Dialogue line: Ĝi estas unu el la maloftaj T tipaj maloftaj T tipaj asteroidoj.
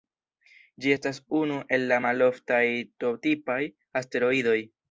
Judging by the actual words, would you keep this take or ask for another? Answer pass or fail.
fail